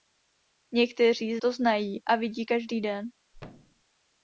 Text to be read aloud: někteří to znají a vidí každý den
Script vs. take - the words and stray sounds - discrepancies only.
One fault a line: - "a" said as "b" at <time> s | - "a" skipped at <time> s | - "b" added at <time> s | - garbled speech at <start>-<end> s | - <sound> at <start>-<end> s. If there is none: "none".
- thud at 3.3-3.8 s